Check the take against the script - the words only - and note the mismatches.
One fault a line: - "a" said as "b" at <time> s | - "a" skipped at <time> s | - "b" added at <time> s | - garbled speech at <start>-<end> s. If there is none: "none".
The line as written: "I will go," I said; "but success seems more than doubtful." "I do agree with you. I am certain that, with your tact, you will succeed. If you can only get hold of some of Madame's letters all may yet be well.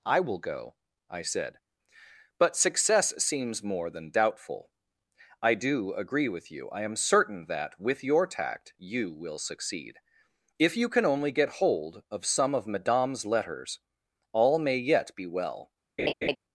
none